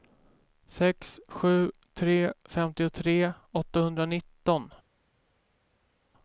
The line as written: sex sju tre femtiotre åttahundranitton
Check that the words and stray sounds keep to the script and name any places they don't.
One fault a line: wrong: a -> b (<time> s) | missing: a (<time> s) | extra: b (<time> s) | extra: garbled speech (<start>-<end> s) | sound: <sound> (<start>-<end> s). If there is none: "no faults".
no faults